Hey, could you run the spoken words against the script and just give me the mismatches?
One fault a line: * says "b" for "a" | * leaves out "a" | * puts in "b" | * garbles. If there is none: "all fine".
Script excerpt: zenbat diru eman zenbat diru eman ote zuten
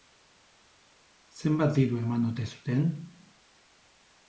* leaves out "zenbat diru eman"